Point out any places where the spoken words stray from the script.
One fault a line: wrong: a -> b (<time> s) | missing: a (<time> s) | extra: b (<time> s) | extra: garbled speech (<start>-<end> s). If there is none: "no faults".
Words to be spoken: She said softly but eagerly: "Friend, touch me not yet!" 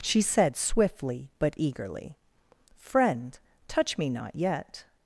wrong: softly -> swiftly (0.6 s)